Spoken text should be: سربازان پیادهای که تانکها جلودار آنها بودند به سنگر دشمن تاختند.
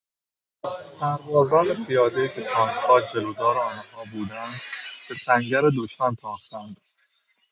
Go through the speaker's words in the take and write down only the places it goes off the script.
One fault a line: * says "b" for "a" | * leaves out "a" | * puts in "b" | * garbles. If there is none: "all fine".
all fine